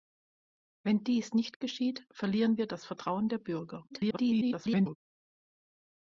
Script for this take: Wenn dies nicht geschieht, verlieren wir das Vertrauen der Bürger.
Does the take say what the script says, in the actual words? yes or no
no